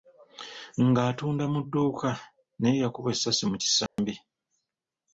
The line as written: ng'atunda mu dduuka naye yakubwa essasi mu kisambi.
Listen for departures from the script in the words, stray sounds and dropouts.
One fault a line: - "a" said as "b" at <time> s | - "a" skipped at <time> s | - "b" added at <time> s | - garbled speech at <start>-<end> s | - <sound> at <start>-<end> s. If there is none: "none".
- dropout at 3.9-4.0 s